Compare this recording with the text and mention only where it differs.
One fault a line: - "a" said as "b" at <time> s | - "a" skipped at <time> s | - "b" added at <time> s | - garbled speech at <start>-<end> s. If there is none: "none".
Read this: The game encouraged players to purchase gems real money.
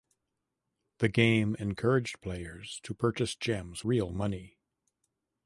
none